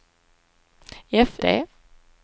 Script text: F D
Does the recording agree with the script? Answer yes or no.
yes